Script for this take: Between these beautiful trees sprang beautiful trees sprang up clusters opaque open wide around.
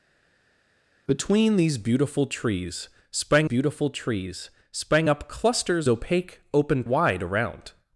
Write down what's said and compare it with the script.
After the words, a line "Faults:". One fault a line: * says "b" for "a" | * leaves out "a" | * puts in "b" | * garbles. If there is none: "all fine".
Between these beautiful trees sprang beautiful trees sprang up clusters opaque open wide around.
Faults:
all fine